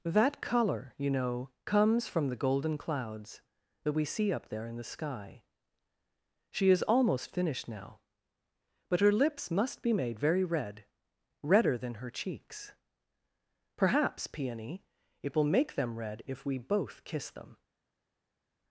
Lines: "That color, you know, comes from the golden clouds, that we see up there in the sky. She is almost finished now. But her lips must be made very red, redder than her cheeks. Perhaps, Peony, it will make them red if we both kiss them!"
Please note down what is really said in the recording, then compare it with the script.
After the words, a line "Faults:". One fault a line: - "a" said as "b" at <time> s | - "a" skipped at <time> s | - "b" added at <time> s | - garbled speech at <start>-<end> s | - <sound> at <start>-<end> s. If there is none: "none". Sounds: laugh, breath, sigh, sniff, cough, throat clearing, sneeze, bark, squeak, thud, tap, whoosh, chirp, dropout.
"That color, you know, comes from the golden clouds, that we see up there in the sky. She is almost finished now. But her lips must be made very red, redder than her cheeks. Perhaps, Peony, it will make them red if we both kiss them!"
Faults:
none